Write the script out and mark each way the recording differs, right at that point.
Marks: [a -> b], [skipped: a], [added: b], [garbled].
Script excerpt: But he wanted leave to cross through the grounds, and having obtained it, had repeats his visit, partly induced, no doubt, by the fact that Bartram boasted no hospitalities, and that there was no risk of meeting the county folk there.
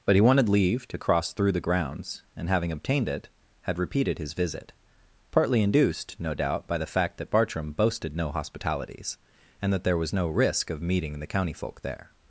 But he wanted leave to cross through the grounds, and having obtained it, had [repeats -> repeated] his visit, partly induced, no doubt, by the fact that Bartram boasted no hospitalities, and that there was no risk of meeting the county folk there.